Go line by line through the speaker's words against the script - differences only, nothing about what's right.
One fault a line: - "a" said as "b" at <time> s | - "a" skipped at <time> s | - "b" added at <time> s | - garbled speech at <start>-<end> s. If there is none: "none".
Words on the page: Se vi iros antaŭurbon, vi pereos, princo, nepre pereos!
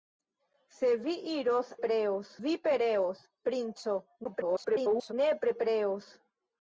- "antaŭurbon" said as "pereos" at 1.8 s
- garbled speech at 4.2-5.1 s